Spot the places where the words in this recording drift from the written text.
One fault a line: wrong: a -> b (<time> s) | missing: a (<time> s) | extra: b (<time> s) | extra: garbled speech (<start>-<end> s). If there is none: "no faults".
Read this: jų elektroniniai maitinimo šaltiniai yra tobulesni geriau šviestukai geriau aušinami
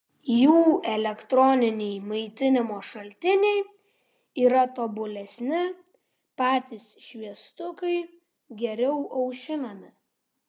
wrong: geriau -> patys (6.4 s)